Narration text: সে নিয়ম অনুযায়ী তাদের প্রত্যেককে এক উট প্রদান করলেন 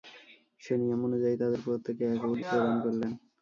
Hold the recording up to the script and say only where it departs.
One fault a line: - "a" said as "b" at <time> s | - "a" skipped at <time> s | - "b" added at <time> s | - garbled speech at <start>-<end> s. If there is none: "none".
none